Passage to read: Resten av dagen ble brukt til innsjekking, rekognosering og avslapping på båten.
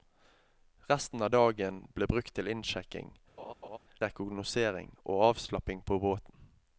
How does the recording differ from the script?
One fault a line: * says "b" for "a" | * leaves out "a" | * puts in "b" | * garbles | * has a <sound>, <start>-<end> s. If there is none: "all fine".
* has a laugh, 3.4-3.8 s